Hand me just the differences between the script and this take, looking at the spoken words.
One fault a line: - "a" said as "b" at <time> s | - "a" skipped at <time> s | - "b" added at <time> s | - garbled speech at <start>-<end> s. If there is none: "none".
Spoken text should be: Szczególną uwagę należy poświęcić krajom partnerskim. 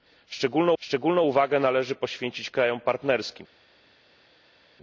- "szczególną" added at 0.8 s